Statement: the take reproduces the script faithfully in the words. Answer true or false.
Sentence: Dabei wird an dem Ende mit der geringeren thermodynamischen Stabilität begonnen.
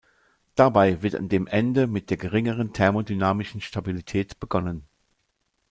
true